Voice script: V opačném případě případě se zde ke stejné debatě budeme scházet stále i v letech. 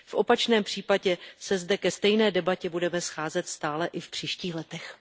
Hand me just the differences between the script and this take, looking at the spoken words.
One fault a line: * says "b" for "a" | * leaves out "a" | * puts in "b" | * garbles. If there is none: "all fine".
* leaves out "případě"
* puts in "příštích"